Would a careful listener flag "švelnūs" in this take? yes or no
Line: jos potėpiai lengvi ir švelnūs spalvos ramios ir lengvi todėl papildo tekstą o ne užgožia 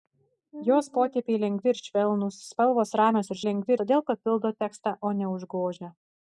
no